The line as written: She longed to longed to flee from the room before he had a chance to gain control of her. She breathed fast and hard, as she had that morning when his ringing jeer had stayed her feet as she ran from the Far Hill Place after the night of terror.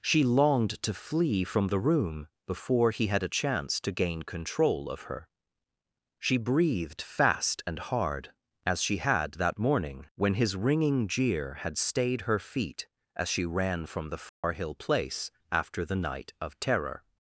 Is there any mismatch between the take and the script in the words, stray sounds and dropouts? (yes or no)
yes